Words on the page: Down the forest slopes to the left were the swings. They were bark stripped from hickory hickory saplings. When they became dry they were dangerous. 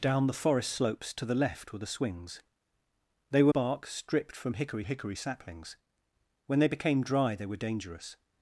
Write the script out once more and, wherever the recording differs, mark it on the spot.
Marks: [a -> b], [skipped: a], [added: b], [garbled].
Down the forest slopes to the left were the swings. They were bark stripped from hickory hickory saplings. When they became dry they were dangerous.